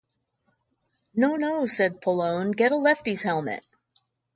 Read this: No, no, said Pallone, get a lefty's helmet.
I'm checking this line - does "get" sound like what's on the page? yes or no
yes